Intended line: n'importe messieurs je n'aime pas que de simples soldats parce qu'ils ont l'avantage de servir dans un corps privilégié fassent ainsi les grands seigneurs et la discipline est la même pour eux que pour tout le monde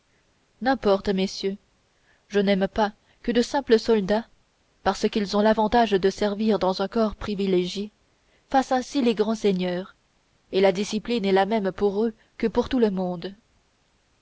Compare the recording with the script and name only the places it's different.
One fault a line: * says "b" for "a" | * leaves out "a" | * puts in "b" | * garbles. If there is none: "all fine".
all fine